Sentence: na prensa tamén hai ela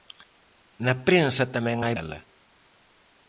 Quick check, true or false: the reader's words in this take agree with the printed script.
true